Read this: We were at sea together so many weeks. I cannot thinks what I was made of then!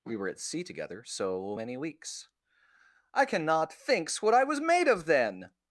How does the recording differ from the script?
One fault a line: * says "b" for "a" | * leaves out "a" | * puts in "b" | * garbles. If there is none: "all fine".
all fine